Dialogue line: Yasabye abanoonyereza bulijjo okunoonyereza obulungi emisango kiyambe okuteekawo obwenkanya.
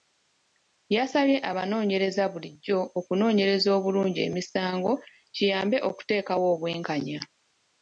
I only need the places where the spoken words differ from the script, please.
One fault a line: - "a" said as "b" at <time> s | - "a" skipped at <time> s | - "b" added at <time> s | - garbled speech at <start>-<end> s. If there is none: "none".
none